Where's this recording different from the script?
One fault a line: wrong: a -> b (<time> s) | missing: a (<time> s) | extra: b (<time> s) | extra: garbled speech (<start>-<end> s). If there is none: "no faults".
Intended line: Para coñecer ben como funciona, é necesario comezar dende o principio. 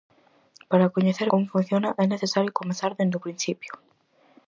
missing: ben (1.3 s)